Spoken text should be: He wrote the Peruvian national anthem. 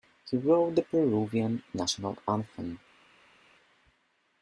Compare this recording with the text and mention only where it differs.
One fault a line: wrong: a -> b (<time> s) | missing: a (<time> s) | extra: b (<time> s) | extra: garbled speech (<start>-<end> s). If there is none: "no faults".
no faults